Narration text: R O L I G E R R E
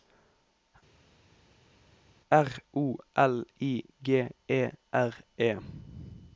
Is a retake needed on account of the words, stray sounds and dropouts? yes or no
yes